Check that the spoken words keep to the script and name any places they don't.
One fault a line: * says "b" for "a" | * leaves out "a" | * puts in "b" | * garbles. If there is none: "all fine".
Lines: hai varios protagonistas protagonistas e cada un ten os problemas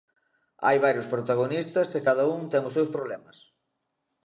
* leaves out "protagonistas"
* puts in "seus"